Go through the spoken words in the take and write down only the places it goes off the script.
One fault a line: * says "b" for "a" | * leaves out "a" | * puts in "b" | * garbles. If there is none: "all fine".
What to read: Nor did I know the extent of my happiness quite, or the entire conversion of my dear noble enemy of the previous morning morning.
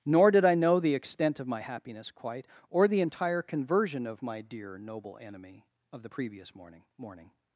all fine